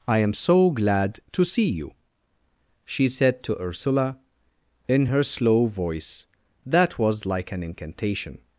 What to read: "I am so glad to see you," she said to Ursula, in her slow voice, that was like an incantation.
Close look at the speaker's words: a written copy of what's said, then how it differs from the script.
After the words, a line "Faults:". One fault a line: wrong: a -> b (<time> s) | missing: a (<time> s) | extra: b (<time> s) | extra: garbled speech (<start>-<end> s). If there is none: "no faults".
"I am so glad to see you," she said to Ursula, in her slow voice, that was like an incantation.
Faults:
no faults